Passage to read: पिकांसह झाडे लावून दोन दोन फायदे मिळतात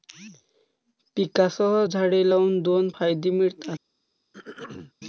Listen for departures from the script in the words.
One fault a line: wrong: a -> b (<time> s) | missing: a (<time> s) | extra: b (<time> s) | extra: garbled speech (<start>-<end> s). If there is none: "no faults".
missing: दोन (2.9 s)